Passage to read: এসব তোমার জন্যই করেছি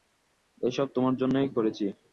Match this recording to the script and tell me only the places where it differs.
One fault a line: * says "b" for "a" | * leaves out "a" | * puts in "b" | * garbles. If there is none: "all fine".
all fine